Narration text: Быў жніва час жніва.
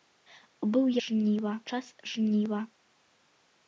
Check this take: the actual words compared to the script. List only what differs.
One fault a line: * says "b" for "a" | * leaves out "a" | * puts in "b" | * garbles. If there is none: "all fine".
all fine